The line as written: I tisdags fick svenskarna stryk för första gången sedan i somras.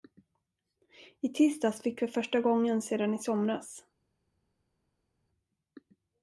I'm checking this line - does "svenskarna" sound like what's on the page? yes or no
no